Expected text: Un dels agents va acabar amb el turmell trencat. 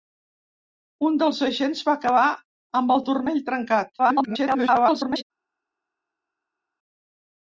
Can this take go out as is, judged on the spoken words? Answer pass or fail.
fail